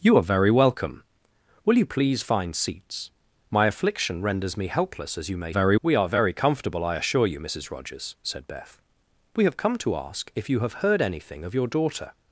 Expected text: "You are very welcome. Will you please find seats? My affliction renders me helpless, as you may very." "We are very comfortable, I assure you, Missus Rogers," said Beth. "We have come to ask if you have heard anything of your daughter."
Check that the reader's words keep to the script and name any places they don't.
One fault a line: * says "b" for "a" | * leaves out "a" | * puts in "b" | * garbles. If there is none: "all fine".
all fine